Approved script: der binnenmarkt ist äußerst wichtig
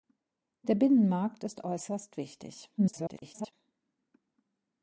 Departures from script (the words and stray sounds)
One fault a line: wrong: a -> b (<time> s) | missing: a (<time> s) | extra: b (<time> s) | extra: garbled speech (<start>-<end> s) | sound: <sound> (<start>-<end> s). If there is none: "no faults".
extra: garbled speech (2.8-3.5 s)